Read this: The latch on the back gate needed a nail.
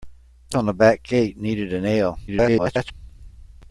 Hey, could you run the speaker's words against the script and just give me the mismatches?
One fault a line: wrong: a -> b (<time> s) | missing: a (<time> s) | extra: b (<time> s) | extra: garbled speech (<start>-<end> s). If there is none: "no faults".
missing: latch (0.6 s)
extra: garbled speech (2.3-2.9 s)